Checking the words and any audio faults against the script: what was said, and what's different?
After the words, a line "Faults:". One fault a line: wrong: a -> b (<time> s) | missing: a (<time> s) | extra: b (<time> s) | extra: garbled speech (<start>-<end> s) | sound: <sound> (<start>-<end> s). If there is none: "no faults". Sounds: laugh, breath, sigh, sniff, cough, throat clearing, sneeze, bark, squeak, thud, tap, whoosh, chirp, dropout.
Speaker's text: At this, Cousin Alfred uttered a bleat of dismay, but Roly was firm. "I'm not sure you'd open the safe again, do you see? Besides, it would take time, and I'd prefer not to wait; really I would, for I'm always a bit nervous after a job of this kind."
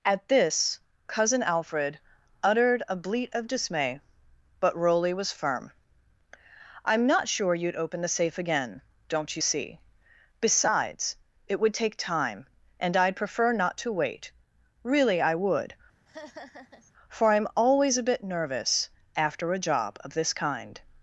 At this, Cousin Alfred uttered a bleat of dismay, but Roly was firm. "I'm not sure you'd open the safe again, don't you see? Besides, it would take time, and I'd prefer not to wait; really I would, for I'm always a bit nervous after a job of this kind."
Faults:
wrong: do -> don't (9.1 s)
sound: laugh (16.1-16.9 s)